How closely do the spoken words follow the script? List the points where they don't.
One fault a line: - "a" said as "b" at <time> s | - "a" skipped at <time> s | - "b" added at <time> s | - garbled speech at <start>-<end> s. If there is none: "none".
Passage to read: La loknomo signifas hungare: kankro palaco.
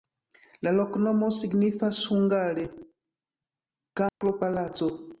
none